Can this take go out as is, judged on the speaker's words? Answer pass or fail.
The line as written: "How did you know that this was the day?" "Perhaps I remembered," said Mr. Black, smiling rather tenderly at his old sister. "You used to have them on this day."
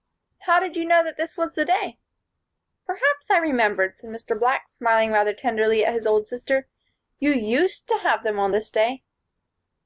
pass